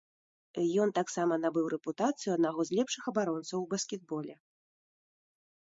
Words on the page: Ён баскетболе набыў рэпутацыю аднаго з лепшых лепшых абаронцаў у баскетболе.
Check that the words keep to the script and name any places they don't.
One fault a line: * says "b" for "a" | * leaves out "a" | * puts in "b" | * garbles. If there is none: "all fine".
* says "таксама" for "баскетболе"
* leaves out "лепшых"